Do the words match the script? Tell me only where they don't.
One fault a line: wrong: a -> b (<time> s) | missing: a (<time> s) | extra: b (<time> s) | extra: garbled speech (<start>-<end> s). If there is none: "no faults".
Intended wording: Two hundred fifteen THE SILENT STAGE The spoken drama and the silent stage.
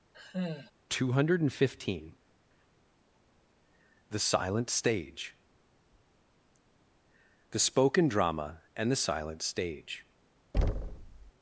no faults